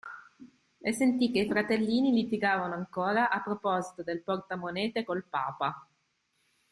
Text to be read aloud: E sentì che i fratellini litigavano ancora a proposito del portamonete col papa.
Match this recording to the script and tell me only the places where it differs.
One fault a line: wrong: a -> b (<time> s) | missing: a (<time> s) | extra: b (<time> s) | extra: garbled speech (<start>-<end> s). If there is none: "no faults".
no faults